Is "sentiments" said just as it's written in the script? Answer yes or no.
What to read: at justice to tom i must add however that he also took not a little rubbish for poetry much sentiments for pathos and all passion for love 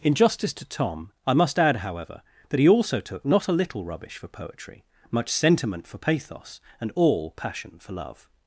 no